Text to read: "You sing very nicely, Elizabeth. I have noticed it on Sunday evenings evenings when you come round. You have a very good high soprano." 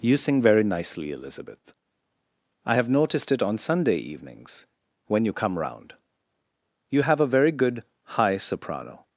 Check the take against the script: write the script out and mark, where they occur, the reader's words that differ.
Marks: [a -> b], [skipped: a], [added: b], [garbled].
"You sing very nicely, Elizabeth. I have noticed it on Sunday evenings [skipped: evenings] when you come round. You have a very good high soprano."